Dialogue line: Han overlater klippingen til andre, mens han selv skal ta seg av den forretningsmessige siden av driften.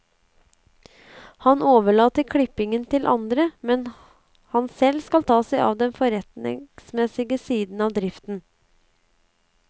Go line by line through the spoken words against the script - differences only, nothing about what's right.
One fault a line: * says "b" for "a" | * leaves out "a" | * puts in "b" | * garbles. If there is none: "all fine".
all fine